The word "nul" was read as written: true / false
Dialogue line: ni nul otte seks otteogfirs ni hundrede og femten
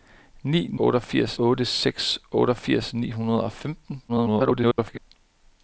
false